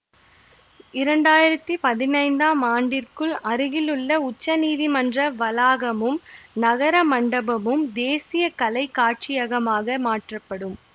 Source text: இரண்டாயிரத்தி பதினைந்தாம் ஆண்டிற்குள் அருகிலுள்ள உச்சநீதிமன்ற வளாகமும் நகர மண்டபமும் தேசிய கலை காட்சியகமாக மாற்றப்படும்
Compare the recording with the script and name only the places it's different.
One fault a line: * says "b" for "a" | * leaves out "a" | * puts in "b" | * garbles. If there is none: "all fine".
all fine